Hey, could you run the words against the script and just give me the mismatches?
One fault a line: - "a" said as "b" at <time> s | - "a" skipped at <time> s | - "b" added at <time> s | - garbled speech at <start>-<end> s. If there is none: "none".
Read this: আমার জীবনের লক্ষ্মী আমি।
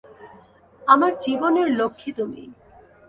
- "আমি" said as "তুমি" at 2.1 s